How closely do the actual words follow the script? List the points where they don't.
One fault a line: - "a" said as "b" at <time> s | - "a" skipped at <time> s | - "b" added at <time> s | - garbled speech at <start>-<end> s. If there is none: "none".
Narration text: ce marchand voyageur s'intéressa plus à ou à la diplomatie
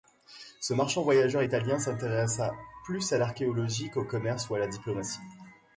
- "italien" added at 1.4 s
- "l'archéologie qu'au commerce" added at 3.2 s